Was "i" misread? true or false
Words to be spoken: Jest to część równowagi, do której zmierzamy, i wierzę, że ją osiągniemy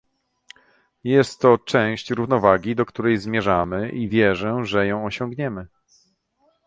false